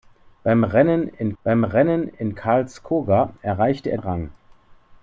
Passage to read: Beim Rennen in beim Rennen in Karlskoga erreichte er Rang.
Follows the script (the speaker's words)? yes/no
yes